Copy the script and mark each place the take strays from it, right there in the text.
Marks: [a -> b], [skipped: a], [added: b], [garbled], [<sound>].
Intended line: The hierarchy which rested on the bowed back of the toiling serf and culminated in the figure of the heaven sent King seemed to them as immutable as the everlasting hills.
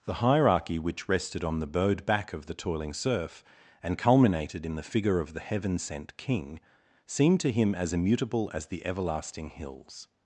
The hierarchy which rested on the bowed back of the toiling serf and culminated in the figure of the heaven sent King seemed to [them -> him] as immutable as the everlasting hills.